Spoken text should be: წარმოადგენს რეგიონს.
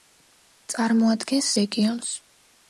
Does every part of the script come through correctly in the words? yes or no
yes